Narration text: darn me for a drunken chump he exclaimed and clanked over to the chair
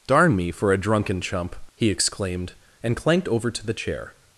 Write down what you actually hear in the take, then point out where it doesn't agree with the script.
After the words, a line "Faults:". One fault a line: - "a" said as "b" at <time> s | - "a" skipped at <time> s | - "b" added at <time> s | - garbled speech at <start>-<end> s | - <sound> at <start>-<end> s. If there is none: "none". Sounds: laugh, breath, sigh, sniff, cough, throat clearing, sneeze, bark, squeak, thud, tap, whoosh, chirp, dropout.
darn me for a drunken chump he exclaimed and clanked over to the chair
Faults:
none